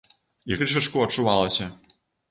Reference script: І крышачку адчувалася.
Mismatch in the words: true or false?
false